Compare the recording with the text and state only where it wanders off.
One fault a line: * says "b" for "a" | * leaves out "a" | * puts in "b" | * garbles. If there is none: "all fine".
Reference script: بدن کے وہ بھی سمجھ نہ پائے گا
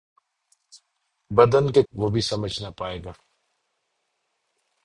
all fine